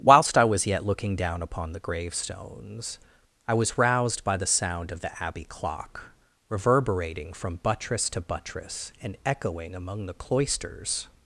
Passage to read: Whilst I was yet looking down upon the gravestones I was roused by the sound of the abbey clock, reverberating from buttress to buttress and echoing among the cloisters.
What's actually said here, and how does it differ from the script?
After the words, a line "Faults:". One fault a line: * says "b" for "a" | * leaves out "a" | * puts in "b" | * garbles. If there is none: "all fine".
Whilst I was yet looking down upon the gravestones I was roused by the sound of the abbey clock, reverberating from buttress to buttress and echoing among the cloisters.
Faults:
all fine